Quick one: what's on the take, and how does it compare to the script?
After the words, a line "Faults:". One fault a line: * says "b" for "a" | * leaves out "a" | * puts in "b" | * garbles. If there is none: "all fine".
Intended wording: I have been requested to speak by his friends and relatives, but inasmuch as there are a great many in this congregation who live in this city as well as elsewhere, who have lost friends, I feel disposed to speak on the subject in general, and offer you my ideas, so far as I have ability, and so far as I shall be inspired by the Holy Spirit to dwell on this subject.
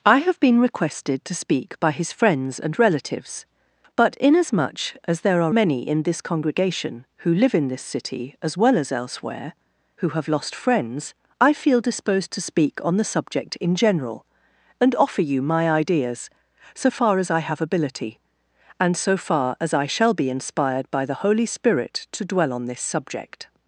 I have been requested to speak by his friends and relatives, but inasmuch as there are many in this congregation who live in this city as well as elsewhere, who have lost friends, I feel disposed to speak on the subject in general, and offer you my ideas, so far as I have ability, and so far as I shall be inspired by the Holy Spirit to dwell on this subject.
Faults:
* leaves out "a great"